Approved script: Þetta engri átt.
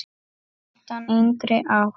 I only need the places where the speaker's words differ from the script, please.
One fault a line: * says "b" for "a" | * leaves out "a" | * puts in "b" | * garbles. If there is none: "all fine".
all fine